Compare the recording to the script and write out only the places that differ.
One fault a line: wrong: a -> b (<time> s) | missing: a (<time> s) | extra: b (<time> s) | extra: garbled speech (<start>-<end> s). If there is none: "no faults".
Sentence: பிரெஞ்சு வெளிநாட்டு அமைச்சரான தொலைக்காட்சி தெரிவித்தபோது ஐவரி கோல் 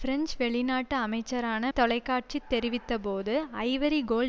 no faults